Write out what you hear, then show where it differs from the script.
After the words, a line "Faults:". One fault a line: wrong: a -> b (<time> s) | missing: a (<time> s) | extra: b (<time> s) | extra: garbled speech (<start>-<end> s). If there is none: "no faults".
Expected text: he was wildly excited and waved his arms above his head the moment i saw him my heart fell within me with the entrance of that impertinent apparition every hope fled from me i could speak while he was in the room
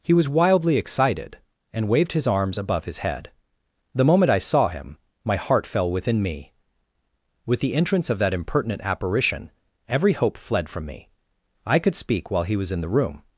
he was wildly excited and waved his arms above his head the moment i saw him my heart fell within me with the entrance of that impertinent apparition every hope fled from me i could speak while he was in the room
Faults:
no faults